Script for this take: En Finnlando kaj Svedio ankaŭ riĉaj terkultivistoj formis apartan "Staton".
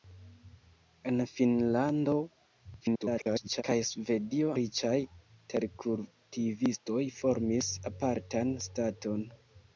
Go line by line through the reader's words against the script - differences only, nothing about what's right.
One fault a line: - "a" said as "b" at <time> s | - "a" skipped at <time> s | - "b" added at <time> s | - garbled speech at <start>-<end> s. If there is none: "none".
- garbled speech at 2.8-3.6 s
- "ankaŭ" skipped at 4.5 s